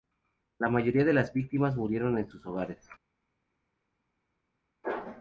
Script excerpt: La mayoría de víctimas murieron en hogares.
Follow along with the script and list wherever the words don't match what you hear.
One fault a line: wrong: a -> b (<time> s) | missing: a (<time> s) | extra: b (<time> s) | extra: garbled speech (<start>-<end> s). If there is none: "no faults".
extra: las (1.1 s)
extra: sus (2.3 s)